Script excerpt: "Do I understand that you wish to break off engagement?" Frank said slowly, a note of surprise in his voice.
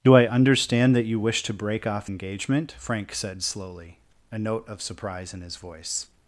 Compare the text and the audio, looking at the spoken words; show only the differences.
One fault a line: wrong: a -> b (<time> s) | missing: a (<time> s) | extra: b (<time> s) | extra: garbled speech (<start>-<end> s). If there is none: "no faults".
no faults